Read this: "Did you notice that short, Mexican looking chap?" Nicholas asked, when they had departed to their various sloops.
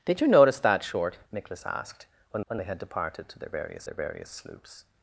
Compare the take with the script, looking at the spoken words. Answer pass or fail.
fail